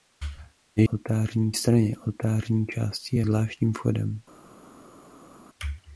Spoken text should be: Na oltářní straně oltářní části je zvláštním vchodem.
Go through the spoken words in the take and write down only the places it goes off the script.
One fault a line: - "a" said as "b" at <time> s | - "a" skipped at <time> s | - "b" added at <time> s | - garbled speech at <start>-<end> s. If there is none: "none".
none